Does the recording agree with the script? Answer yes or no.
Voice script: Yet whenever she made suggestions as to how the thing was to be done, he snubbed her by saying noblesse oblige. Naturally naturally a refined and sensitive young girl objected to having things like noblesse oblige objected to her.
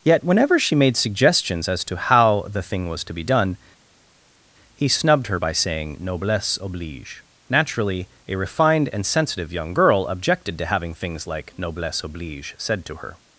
no